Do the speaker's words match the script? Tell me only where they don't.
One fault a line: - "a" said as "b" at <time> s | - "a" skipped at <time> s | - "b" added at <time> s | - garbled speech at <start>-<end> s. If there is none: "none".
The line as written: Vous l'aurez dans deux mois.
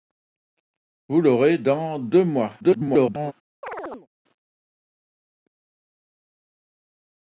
- garbled speech at 2.6-3.3 s